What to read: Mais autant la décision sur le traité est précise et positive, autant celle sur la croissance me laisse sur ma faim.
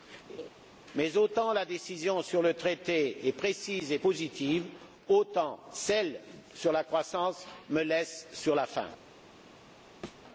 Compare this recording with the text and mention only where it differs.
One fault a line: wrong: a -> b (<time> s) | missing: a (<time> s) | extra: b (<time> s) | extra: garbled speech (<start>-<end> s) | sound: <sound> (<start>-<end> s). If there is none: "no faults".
sound: laugh (0.3-0.5 s)
sound: thud (10.0-10.2 s)